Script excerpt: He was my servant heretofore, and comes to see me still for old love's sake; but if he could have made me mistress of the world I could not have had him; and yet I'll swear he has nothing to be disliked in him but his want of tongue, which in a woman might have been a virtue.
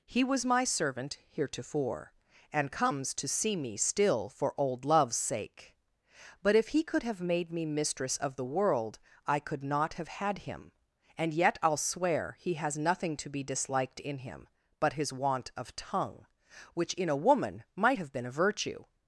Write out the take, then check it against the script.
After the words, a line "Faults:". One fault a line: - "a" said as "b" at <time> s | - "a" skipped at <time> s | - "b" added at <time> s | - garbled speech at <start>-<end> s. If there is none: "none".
He was my servant heretofore, and comes to see me still for old love's sake; but if he could have made me mistress of the world I could not have had him; and yet I'll swear he has nothing to be disliked in him but his want of tongue, which in a woman might have been a virtue.
Faults:
none